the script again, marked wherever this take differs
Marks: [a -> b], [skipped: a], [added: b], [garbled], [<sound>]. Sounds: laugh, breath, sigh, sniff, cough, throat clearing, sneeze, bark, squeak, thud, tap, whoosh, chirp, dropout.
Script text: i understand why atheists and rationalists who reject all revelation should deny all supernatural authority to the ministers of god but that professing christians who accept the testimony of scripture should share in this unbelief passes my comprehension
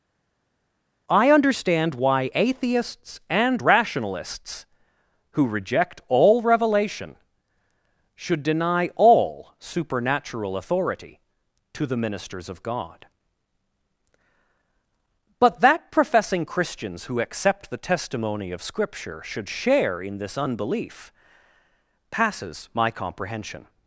i understand why atheists and rationalists who reject all revelation should deny all supernatural authority to the ministers of god but that professing christians who accept the testimony of scripture should share in this unbelief passes my comprehension